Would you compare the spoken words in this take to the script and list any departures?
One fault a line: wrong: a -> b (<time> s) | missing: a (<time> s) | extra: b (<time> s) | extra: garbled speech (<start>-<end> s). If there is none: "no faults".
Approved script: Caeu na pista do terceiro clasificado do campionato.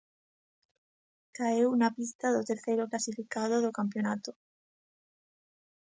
no faults